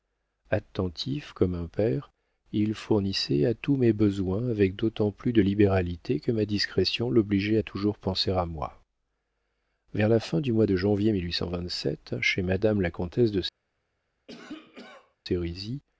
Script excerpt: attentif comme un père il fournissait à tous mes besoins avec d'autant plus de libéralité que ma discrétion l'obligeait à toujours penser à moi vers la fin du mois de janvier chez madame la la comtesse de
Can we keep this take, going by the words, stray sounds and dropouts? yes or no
no